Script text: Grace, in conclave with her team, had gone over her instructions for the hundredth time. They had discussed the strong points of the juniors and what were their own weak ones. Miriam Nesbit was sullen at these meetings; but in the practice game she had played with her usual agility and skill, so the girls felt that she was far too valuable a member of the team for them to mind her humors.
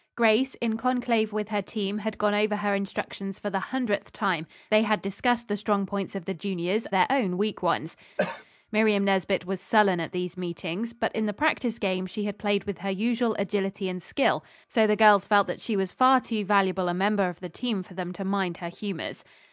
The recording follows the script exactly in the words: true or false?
false